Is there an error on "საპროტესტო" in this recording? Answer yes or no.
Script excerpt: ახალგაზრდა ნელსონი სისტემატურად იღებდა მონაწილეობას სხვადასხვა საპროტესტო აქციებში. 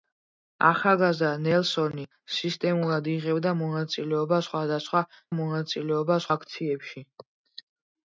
yes